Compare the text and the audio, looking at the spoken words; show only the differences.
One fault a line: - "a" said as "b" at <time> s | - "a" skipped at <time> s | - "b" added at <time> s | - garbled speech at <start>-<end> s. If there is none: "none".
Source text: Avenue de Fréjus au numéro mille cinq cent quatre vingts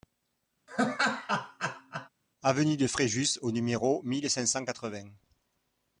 none